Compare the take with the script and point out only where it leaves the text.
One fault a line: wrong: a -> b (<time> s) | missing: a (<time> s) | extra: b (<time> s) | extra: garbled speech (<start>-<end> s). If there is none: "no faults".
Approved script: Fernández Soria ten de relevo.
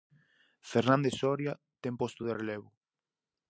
extra: posto (2.0 s)